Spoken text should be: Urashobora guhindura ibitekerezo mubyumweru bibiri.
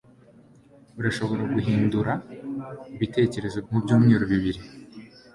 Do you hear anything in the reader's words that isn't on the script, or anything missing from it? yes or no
no